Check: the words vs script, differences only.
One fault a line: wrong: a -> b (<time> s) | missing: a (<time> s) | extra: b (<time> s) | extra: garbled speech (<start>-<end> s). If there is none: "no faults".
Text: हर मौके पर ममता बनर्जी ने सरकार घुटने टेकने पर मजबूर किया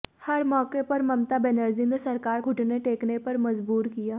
no faults